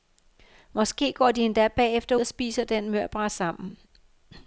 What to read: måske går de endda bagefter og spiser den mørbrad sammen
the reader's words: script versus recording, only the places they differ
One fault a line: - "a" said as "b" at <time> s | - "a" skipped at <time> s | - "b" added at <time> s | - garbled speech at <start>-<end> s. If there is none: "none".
none